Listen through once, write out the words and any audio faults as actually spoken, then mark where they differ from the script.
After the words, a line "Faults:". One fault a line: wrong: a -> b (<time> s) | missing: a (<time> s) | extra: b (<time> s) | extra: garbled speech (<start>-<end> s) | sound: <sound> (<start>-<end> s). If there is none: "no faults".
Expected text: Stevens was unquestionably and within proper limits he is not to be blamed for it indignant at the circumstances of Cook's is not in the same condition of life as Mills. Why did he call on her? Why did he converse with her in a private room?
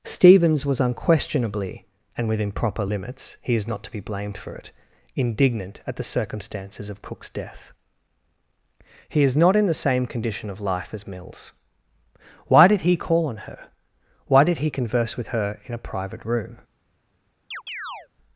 Stevens was unquestionably and within proper limits he is not to be blamed for it indignant at the circumstances of Cook's death. He is not in the same condition of life as Mills. Why did he call on her? Why did he converse with her in a private room?
Faults:
extra: death He (7.3 s)
sound: chirp (17.5-18.1 s)